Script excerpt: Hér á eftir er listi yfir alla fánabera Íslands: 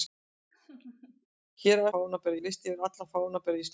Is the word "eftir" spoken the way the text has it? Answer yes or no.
no